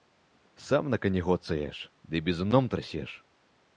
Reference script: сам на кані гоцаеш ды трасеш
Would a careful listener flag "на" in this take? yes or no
no